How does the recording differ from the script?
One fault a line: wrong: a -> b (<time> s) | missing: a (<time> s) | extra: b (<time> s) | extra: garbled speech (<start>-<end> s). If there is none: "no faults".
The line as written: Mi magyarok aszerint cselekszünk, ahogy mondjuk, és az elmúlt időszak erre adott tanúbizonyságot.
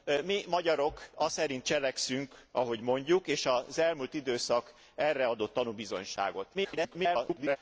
extra: garbled speech (6.5-7.6 s)